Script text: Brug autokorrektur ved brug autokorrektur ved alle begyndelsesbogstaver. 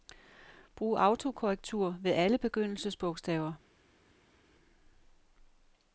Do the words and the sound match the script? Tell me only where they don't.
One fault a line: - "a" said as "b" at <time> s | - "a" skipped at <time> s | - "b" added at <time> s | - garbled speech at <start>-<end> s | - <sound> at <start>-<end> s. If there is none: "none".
- "brug autokorrektur ved" skipped at 2.1 s